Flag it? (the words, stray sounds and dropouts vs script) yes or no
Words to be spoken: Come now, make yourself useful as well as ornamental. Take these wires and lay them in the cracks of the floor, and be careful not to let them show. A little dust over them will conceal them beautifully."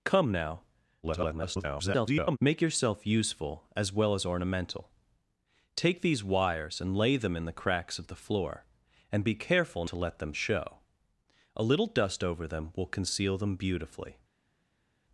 yes